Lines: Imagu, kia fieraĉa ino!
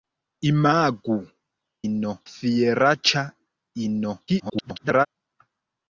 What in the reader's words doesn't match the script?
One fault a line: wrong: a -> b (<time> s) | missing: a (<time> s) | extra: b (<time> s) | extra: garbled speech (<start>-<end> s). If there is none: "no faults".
wrong: kia -> ino (1.9 s)
extra: garbled speech (4.3-5.1 s)